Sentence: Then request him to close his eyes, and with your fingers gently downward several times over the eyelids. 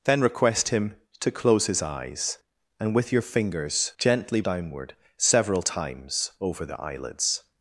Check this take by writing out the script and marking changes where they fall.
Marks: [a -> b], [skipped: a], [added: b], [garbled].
Then request him to close his eyes, and with your fingers gently downward several times over the eyelids.